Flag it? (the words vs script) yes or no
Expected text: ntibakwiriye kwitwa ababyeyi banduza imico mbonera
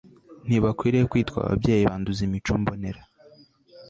no